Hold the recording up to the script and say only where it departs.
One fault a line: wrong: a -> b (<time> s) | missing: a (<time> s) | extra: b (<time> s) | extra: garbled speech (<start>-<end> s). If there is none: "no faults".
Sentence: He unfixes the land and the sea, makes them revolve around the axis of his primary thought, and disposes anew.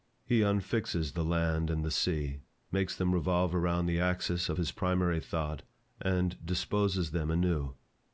extra: them (7.1 s)